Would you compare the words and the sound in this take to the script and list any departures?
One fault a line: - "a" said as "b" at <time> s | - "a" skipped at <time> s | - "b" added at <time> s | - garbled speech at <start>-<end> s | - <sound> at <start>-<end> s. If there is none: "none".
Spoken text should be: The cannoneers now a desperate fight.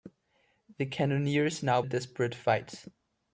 none